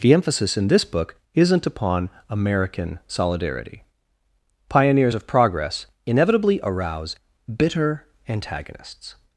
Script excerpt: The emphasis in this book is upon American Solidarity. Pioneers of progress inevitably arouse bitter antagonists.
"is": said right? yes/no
no